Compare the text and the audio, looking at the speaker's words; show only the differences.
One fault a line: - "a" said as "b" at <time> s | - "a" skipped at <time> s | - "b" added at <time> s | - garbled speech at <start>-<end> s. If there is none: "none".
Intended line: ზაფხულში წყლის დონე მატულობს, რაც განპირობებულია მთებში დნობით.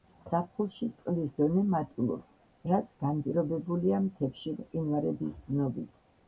- "მყინვარების" added at 4.6 s